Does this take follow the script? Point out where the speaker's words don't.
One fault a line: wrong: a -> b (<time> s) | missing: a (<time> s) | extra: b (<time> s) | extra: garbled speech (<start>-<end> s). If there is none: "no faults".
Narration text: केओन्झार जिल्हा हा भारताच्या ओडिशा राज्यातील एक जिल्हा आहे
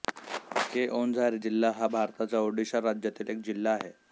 no faults